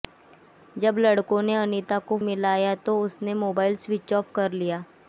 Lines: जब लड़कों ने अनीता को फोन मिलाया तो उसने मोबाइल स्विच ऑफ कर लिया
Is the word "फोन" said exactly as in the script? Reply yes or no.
no